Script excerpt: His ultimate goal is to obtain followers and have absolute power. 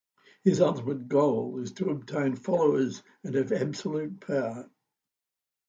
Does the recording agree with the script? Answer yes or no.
yes